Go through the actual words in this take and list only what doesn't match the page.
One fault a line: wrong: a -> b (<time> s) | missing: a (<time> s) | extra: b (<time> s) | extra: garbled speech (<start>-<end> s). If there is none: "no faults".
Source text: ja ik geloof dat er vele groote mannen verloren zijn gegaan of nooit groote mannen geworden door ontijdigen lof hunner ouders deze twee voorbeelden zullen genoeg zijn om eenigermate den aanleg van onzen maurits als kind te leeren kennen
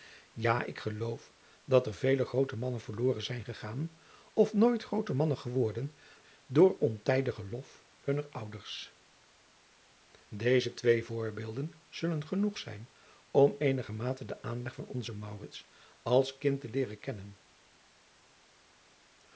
no faults